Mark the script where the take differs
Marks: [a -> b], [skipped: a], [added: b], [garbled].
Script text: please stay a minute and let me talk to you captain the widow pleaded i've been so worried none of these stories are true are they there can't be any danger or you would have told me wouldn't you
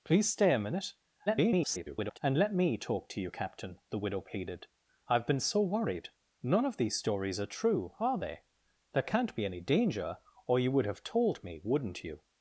please stay a minute [garbled] and let me talk to you captain the widow pleaded i've been so worried none of these stories are true are they there can't be any danger or you would have told me wouldn't you